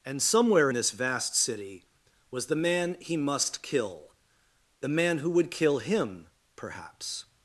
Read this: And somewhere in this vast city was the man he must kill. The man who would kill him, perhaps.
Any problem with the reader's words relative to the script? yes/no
yes